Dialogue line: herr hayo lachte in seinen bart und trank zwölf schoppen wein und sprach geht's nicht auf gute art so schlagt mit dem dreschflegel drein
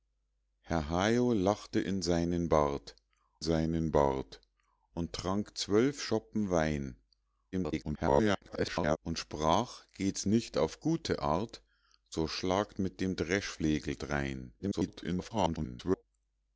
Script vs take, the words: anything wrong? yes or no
yes